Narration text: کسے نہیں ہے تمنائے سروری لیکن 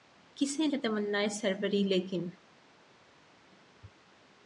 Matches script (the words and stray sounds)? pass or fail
fail